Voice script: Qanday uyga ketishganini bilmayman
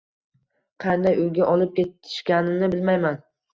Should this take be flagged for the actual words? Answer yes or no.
yes